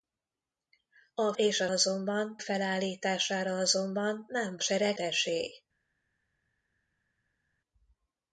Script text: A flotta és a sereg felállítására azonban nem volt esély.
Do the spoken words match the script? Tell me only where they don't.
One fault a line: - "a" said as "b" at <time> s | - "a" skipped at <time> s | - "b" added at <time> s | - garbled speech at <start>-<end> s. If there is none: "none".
- "flotta" skipped at 1.3 s
- "sereg" said as "azonban" at 1.7 s
- "volt" said as "sereg" at 4.6 s